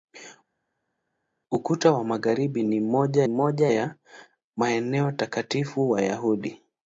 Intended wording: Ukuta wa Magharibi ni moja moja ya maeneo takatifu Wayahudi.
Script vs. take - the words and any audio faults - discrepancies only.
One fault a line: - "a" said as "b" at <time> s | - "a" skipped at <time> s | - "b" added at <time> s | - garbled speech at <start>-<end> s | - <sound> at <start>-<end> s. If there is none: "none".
none